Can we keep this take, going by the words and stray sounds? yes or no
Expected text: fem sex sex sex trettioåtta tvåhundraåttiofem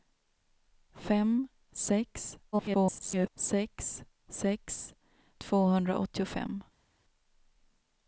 no